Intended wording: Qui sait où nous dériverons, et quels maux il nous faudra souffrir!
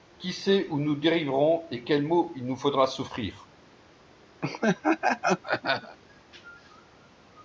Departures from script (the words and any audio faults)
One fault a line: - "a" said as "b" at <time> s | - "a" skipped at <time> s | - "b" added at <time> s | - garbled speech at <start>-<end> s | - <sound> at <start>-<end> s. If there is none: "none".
- laugh at 4.4-6.0 s